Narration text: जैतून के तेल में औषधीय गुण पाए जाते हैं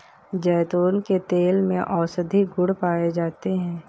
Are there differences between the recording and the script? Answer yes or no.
no